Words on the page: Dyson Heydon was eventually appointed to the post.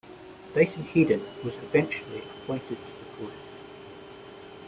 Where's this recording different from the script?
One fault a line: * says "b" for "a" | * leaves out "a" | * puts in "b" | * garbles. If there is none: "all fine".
all fine